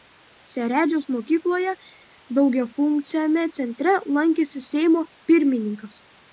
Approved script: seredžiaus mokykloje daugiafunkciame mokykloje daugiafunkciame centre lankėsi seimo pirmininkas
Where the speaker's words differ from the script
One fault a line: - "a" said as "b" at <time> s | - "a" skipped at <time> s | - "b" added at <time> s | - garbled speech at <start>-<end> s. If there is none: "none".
- "mokykloje daugiafunkciame" skipped at 3.5 s